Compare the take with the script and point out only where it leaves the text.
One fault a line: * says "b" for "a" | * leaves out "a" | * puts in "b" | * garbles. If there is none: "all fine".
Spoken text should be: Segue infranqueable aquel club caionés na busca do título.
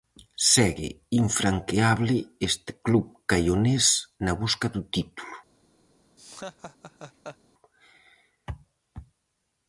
* says "este" for "aquel"